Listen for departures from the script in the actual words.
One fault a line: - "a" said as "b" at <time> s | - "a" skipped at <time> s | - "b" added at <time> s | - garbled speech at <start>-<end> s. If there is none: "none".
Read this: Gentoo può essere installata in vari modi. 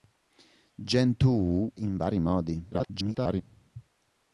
- "può essere installata" skipped at 1.7 s
- garbled speech at 2.7-3.4 s